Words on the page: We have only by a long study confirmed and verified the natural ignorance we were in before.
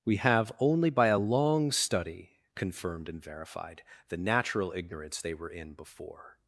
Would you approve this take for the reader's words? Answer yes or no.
no